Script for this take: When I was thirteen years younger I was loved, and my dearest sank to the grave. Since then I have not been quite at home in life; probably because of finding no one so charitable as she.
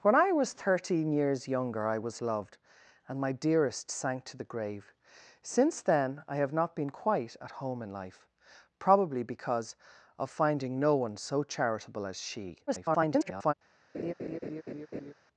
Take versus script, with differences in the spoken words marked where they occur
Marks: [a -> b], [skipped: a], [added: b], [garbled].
When I was thirteen years younger I was loved, and my dearest sank to the grave. Since then I have not been quite at home in life; probably because of finding no one so charitable as she. [garbled]